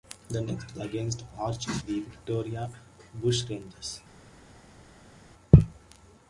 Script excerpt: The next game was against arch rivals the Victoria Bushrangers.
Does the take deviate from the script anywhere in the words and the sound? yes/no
yes